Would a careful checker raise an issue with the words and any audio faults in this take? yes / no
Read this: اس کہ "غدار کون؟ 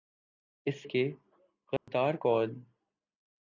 yes